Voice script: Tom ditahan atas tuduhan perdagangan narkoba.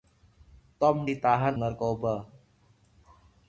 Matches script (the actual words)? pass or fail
fail